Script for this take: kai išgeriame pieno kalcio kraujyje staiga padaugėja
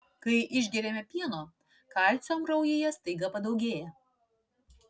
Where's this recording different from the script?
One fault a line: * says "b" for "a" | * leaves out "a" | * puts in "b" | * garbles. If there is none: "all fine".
all fine